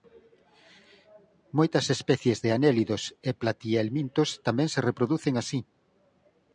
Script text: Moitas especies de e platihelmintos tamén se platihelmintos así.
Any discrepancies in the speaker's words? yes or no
yes